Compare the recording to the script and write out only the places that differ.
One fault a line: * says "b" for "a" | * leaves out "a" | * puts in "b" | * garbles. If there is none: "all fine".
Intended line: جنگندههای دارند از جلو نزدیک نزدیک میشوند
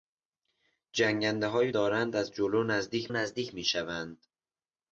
all fine